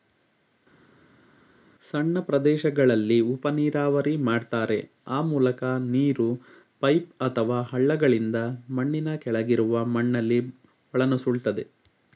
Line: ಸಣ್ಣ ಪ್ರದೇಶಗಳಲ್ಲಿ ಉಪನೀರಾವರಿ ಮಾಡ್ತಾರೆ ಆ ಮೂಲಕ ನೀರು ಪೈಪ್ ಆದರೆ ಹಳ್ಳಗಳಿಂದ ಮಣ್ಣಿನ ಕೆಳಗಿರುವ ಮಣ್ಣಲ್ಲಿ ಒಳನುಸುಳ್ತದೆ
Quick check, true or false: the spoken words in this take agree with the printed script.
false